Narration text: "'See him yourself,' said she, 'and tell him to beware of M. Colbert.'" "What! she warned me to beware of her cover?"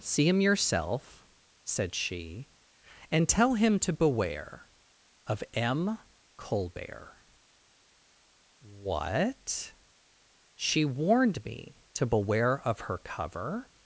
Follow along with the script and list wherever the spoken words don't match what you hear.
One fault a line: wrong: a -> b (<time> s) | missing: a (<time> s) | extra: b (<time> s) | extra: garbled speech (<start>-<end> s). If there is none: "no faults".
no faults